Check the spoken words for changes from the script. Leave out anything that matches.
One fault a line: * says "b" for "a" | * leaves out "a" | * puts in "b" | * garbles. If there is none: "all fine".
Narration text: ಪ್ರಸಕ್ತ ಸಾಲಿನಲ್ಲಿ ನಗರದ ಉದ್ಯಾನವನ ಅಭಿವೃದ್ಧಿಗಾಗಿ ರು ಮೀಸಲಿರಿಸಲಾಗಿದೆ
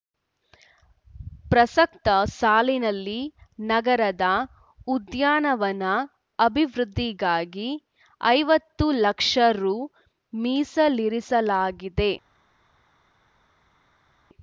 * puts in "ಐವತ್ತು ಲಕ್ಷ"